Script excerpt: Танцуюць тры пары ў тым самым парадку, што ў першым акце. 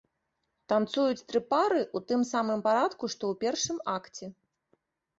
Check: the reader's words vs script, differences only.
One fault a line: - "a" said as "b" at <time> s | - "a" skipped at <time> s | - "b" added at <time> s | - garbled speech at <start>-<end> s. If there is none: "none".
none